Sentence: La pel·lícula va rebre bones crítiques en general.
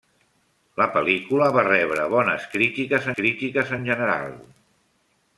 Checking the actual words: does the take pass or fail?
fail